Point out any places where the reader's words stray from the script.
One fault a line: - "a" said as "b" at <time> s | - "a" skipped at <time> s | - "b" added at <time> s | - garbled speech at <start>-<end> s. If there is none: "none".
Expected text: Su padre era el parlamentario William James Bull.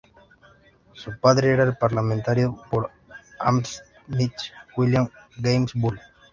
- "por Hammersmith" added at 2.7 s